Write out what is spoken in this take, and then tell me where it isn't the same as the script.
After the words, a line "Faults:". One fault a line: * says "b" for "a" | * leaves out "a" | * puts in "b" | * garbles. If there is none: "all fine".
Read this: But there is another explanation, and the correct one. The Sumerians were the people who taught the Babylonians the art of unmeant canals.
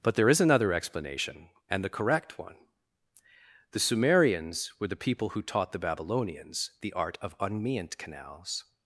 But there is another explanation, and the correct one. The Sumerians were the people who taught the Babylonians the art of unmeant canals.
Faults:
all fine